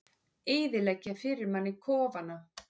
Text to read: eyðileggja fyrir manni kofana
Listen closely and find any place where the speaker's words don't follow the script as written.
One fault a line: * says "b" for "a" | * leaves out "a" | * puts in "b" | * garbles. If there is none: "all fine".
all fine